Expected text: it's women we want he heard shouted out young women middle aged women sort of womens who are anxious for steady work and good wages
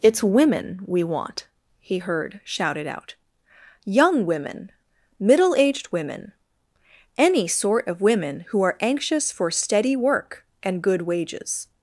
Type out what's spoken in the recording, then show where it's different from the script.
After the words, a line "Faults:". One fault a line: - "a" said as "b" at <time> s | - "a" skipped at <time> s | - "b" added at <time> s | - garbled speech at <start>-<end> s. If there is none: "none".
it's women we want he heard shouted out young women middle aged women any sort of women who are anxious for steady work and good wages
Faults:
- "any" added at 7.2 s
- "womens" said as "women" at 8.0 s